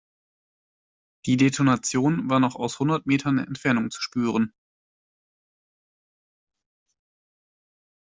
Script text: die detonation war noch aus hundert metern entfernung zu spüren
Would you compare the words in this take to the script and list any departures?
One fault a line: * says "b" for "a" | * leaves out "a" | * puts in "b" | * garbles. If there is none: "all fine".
all fine